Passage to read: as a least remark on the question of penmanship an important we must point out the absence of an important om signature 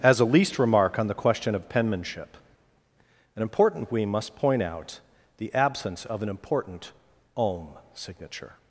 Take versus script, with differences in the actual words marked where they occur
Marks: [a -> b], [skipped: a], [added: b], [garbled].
as a least remark on the question of penmanship an important we must point out the absence of an important om signature